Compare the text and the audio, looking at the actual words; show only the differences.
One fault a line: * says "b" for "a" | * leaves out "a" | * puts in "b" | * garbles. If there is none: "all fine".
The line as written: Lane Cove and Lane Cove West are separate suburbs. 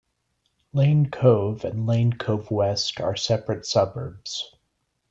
all fine